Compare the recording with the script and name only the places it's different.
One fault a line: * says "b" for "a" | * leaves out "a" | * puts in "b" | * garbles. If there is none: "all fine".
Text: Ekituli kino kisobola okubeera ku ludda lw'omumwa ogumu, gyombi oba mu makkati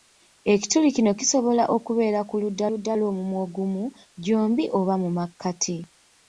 * puts in "ludda"